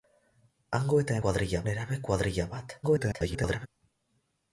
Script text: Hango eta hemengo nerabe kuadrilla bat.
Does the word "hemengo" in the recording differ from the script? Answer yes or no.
yes